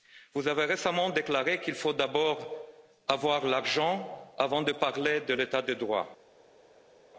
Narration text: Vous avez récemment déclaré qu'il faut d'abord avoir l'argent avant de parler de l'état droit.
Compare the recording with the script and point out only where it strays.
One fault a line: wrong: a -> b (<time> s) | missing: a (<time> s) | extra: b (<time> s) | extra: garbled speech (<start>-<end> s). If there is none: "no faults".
extra: de (5.6 s)